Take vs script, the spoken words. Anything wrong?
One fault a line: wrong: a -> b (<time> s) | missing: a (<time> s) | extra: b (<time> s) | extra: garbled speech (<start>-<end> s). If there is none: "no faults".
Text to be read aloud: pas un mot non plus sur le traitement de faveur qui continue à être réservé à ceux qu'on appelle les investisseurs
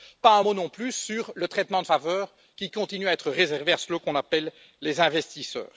no faults